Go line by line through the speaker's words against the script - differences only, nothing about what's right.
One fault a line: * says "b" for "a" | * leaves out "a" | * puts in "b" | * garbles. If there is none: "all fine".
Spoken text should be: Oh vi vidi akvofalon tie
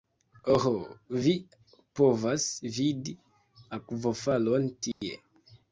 * puts in "povas"